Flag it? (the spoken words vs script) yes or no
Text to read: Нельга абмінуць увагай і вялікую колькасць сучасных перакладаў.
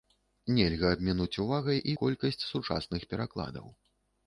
yes